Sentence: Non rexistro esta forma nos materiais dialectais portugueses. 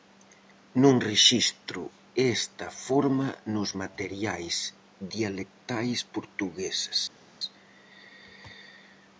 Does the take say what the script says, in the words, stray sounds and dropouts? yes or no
yes